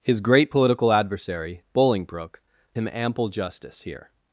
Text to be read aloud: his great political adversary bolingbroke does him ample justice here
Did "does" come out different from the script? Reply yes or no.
yes